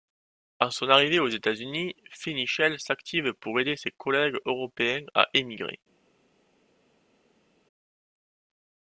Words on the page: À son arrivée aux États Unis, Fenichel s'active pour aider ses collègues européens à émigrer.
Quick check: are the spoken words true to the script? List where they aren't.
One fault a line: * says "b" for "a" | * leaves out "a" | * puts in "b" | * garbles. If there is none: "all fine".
all fine